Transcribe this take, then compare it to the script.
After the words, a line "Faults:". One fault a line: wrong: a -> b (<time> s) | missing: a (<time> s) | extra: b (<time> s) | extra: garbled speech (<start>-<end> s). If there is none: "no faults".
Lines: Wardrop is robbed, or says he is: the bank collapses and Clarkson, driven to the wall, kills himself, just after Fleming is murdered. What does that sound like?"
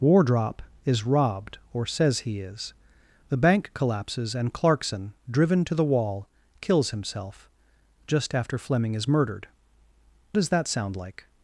Wardrop is robbed, or says he is: the bank collapses and Clarkson, driven to the wall, kills himself, just after Fleming is murdered. Does that sound like?"
Faults:
missing: What (9.4 s)